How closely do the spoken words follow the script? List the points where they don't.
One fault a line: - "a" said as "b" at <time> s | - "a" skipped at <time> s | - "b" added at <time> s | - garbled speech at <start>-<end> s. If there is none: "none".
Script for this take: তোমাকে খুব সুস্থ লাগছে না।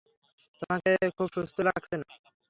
none